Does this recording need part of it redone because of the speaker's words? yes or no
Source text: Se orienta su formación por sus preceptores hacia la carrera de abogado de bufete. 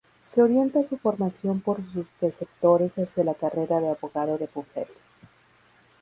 no